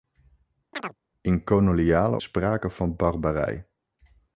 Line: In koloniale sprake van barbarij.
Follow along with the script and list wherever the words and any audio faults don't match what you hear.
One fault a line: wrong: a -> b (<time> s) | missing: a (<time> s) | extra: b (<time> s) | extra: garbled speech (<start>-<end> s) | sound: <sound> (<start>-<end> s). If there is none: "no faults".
sound: chirp (0.7-1.0 s)